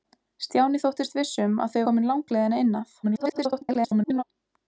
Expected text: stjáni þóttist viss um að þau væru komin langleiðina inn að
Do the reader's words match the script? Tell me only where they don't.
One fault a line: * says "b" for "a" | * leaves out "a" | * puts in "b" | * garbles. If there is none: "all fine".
* leaves out "væru"
* garbles